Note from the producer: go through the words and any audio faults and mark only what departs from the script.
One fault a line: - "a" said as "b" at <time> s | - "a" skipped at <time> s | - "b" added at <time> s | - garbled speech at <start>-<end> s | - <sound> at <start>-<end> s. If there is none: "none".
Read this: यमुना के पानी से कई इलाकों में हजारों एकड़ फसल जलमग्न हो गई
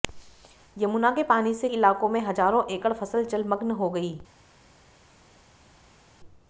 - "कई" skipped at 1.7 s